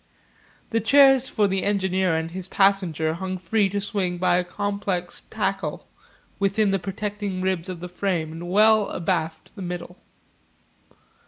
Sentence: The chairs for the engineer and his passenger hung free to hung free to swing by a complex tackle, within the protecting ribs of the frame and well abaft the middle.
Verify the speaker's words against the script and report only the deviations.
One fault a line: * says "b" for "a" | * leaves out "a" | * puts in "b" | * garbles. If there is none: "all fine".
* leaves out "hung free to"